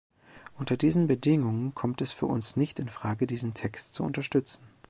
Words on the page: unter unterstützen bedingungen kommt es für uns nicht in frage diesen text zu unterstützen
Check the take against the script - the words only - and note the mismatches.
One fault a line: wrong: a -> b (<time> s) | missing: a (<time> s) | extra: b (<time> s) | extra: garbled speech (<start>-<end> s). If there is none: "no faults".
wrong: unterstützen -> diesen (0.8 s)